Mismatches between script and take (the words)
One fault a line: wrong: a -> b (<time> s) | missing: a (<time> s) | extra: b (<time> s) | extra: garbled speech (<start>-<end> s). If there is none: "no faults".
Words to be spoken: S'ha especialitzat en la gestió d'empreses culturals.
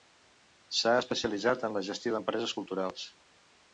no faults